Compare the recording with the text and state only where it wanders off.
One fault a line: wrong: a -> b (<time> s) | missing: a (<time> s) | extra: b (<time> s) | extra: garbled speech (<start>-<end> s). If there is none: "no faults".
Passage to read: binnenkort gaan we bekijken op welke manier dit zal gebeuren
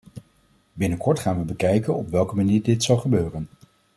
no faults